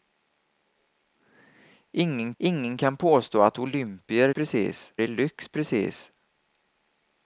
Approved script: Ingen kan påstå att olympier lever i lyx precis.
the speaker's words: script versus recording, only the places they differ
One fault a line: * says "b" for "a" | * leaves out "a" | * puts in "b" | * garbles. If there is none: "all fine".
* puts in "ingen"
* says "precis" for "lever"